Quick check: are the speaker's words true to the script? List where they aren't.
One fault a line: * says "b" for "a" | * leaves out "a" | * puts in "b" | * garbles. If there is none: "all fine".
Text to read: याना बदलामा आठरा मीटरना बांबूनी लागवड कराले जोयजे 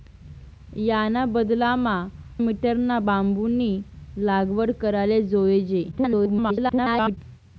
* leaves out "आठरा"
* garbles